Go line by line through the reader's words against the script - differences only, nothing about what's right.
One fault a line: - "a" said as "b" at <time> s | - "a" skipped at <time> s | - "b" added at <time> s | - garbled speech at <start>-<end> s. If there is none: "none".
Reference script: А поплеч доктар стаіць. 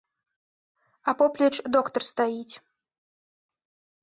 none